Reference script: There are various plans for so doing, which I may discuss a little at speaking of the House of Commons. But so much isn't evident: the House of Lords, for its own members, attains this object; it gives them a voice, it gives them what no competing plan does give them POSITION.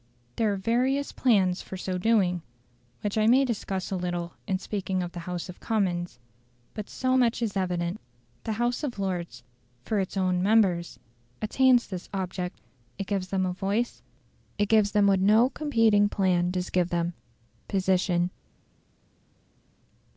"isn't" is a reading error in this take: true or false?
true